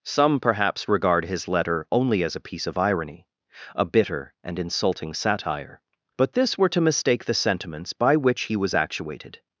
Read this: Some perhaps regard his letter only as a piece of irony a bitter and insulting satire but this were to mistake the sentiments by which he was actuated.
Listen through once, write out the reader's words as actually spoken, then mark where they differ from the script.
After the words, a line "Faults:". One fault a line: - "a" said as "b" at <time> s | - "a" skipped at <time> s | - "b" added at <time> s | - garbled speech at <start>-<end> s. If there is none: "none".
Some perhaps regard his letter only as a piece of irony a bitter and insulting satire but this were to mistake the sentiments by which he was actuated.
Faults:
none